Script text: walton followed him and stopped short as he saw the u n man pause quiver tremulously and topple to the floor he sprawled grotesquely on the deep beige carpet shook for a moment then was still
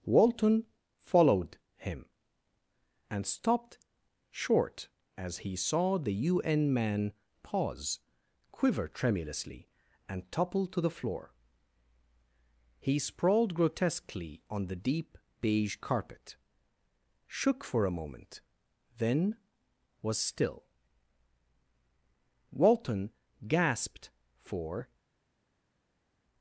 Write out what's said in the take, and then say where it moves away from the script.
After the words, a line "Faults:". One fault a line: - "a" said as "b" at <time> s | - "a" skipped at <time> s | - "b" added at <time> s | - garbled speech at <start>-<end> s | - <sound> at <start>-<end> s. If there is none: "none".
walton followed him and stopped short as he saw the u n man pause quiver tremulously and topple to the floor he sprawled grotesquely on the deep beige carpet shook for a moment then was still walton gasped for
Faults:
- "walton gasped for" added at 22.5 s